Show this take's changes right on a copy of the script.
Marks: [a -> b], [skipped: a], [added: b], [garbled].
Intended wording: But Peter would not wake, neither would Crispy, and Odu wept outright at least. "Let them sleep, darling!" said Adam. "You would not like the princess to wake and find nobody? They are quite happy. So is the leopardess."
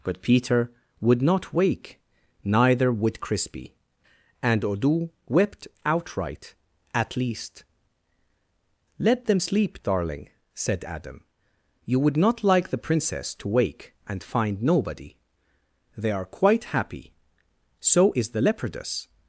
But Peter would not wake, neither would Crispy, and Odu wept outright at least. "Let them sleep, darling!" said Adam. "You would not like the princess to wake and find nobody? They are quite happy. So is the leopardess."